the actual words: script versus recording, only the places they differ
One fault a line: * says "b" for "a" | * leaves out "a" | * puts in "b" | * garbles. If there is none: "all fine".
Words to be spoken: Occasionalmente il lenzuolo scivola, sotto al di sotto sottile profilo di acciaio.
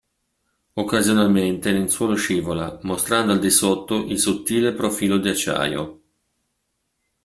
* says "mostrando" for "sotto"
* puts in "il"